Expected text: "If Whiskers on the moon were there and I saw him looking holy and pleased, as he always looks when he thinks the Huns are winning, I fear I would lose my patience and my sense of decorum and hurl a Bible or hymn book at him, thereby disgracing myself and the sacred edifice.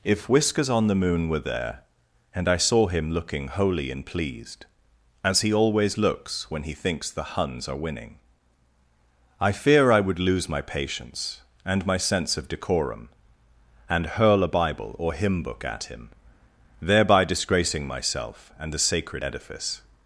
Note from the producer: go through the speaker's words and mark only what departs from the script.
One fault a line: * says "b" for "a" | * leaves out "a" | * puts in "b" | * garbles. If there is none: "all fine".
all fine